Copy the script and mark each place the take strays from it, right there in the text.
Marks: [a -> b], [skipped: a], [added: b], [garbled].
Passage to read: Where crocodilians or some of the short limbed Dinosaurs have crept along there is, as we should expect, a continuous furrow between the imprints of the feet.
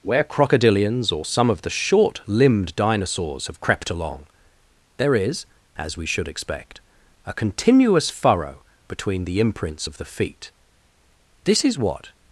Where crocodilians or some of the short limbed Dinosaurs have crept along there is, as we should expect, a continuous furrow between the imprints of the feet. [added: This is what]